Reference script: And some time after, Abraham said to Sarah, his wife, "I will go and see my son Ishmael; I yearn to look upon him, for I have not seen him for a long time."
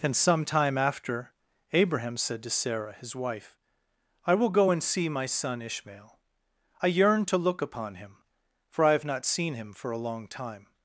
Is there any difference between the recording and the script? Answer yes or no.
no